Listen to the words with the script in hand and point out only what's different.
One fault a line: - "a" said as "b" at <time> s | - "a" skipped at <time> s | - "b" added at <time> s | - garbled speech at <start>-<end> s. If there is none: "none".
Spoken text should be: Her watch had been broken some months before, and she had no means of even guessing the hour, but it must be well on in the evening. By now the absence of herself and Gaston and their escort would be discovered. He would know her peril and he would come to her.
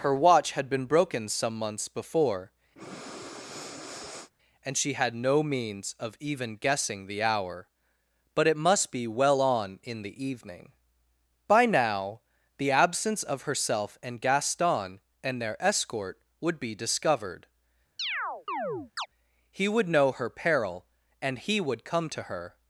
none